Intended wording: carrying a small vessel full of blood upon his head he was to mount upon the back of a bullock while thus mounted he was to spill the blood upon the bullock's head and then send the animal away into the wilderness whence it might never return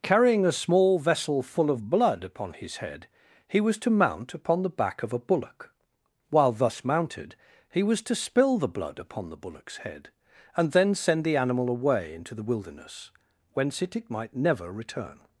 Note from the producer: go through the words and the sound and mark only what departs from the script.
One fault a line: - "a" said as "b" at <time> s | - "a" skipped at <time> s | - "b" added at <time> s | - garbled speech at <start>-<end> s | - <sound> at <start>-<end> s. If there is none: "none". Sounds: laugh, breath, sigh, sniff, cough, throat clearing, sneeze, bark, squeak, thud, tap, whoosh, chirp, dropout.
- "it" added at 13.9 s